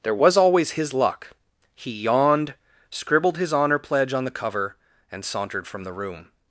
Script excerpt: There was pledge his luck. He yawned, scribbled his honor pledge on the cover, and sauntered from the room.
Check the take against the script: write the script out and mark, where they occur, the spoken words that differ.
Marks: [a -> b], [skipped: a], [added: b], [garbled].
There was [pledge -> always] his luck. He yawned, scribbled his honor pledge on the cover, and sauntered from the room.